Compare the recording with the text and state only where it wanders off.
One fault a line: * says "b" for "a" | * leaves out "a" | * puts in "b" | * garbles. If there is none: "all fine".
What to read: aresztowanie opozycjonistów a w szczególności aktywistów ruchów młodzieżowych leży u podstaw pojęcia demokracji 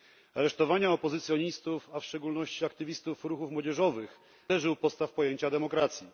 all fine